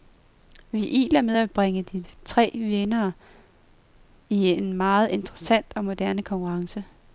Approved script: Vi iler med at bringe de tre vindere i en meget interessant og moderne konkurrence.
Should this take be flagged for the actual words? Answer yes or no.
no